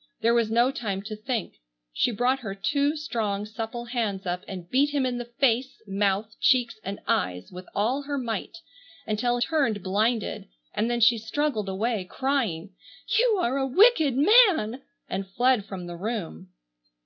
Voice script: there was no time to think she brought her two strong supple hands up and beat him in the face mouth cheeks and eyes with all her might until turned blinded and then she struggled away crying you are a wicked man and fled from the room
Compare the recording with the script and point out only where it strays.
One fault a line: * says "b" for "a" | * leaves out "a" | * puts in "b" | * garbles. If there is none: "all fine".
all fine